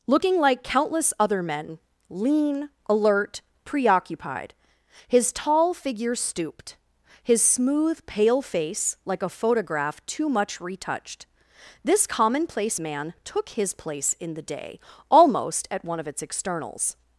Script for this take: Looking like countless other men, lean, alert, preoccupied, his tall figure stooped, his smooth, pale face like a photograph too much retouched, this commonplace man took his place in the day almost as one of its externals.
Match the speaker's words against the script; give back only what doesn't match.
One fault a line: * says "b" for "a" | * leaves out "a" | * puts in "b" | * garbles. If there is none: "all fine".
* says "at" for "as"